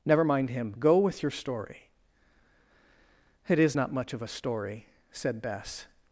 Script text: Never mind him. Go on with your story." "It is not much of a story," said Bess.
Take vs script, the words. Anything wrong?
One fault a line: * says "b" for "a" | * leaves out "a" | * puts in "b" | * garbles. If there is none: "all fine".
* leaves out "on"